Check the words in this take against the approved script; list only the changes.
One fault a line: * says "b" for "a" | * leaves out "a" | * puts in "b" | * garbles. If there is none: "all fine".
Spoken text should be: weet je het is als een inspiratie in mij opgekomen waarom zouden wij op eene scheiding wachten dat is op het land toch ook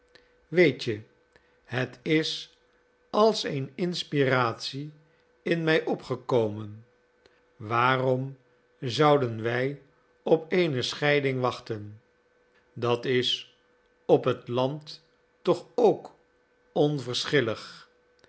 all fine